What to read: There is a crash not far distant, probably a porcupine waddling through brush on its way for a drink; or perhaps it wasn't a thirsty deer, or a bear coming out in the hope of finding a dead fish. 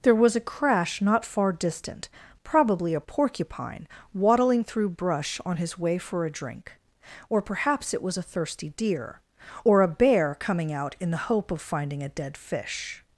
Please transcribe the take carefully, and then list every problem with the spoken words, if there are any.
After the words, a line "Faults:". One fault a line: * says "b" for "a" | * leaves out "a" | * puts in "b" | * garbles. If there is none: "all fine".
There was a crash not far distant, probably a porcupine waddling through brush on his way for a drink; or perhaps it was a thirsty deer, or a bear coming out in the hope of finding a dead fish.
Faults:
* says "was" for "is"
* says "his" for "its"
* says "was" for "wasn't"